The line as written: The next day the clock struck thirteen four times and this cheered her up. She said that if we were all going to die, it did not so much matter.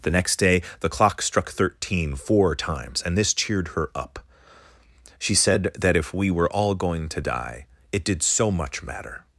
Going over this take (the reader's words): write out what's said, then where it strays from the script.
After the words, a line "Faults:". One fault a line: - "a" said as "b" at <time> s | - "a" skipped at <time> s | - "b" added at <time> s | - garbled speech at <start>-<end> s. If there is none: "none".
The next day the clock struck thirteen four times and this cheered her up. She said that if we were all going to die, it did so much matter.
Faults:
- "not" skipped at 8.2 s